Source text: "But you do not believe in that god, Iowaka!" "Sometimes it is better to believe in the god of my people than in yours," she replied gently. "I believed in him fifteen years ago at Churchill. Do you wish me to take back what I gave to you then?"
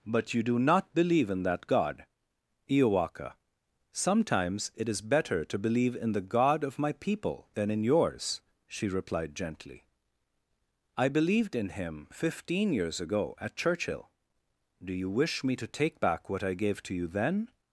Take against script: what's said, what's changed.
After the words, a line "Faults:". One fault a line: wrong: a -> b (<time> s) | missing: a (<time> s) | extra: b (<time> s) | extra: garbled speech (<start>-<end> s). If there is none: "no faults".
"But you do not believe in that god, Iowaka!" "Sometimes it is better to believe in the god of my people than in yours," she replied gently. "I believed in him fifteen years ago at Churchill. Do you wish me to take back what I gave to you then?"
Faults:
no faults